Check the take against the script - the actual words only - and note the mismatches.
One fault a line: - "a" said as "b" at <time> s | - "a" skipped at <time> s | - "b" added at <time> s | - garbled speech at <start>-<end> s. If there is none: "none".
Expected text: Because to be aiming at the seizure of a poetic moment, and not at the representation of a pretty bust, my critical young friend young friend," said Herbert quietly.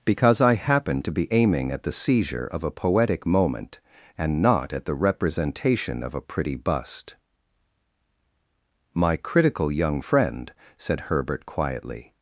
- "I happened" added at 0.4 s
- "young friend" skipped at 10.5 s